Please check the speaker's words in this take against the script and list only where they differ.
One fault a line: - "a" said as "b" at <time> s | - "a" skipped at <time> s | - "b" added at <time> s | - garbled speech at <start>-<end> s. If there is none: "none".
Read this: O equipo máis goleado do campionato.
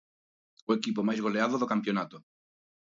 none